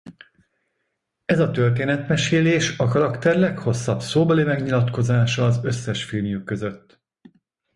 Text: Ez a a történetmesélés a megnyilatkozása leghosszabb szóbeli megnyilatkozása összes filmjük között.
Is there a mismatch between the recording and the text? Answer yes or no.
yes